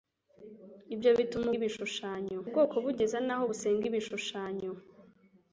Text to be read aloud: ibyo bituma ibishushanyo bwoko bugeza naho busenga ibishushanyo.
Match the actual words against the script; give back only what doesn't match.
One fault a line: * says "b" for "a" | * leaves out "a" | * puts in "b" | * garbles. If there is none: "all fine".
all fine